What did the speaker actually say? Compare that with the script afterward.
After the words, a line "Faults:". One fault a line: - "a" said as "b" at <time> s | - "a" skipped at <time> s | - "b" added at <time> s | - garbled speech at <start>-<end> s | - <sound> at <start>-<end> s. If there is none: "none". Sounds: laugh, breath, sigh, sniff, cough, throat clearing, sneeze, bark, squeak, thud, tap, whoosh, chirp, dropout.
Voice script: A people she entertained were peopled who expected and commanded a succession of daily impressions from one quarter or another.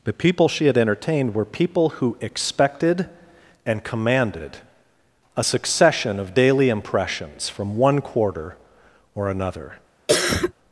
The people she had entertained were people who expected and commanded a succession of daily impressions from one quarter or another.
Faults:
- "A" said as "The" at 0.0 s
- "had" added at 0.7 s
- "peopled" said as "people" at 1.4 s
- cough at 10.1-10.5 s